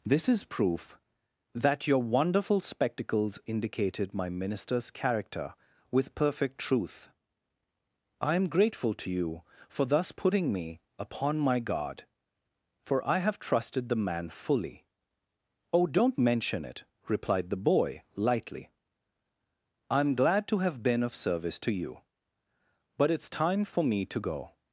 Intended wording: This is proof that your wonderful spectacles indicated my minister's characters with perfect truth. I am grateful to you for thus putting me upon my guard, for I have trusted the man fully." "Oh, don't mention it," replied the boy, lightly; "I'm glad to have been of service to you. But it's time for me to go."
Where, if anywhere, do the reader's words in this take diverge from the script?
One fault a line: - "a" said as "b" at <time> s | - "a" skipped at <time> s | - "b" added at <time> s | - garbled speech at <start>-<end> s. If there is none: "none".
- "characters" said as "character" at 4.9 s